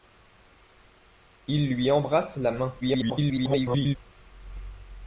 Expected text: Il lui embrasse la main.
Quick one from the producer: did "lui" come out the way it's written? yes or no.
yes